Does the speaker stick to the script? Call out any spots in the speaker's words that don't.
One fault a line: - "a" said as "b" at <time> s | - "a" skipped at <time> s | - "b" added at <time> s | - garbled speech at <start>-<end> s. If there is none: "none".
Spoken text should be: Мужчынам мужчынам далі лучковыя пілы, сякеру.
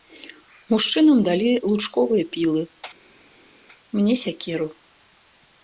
- "мужчынам" skipped at 1.2 s
- "мне" added at 4.0 s